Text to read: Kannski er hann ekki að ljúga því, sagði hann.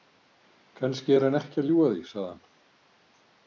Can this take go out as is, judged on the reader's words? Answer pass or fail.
pass